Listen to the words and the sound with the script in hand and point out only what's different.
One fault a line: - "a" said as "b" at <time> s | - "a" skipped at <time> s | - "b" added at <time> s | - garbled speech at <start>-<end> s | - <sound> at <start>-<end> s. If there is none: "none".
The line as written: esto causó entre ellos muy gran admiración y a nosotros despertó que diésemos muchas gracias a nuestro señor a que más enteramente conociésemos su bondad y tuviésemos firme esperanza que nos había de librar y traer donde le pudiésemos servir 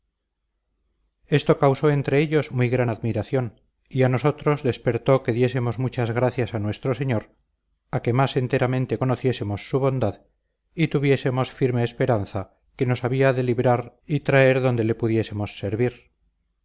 none